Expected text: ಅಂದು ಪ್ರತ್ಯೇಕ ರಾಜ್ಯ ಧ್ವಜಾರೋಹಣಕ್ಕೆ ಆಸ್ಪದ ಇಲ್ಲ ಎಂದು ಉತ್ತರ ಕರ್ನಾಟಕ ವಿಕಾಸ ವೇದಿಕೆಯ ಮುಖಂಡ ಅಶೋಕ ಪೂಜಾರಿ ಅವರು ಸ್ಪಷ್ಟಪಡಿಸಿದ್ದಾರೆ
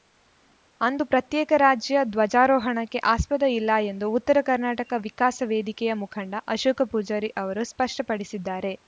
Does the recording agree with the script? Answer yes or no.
yes